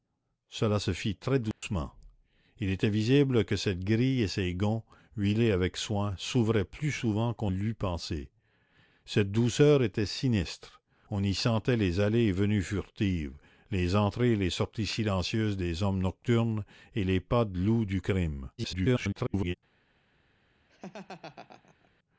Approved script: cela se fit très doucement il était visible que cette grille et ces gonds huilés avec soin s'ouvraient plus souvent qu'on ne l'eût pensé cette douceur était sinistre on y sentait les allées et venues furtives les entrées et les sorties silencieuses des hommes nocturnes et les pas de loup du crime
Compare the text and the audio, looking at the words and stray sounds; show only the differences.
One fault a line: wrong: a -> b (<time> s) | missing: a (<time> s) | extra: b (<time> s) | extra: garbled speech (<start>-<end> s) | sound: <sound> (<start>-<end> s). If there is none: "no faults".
sound: dropout (1.5-1.6 s)
missing: ne (7.5 s)
extra: garbled speech (18.6-19.6 s)
sound: laugh (20.7-21.9 s)